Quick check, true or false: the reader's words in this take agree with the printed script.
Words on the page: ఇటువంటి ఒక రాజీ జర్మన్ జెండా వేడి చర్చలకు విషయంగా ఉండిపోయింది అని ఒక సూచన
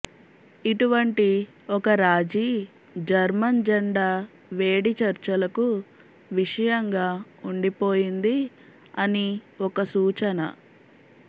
true